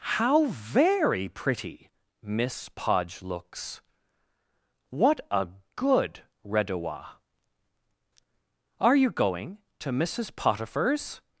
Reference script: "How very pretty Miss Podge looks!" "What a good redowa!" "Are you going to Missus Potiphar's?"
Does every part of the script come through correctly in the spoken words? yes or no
yes